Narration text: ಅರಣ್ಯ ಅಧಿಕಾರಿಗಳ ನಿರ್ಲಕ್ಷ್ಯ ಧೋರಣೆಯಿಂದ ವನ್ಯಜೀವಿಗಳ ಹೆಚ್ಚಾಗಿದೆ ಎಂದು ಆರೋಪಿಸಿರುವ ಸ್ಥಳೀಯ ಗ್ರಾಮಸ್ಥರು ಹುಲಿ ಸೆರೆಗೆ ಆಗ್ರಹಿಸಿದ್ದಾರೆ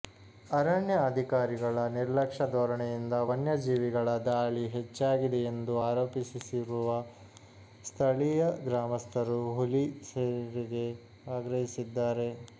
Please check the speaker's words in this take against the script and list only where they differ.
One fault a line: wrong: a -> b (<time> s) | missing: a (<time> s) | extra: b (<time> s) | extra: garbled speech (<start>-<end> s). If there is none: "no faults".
extra: ದಾಳಿ (4.3 s)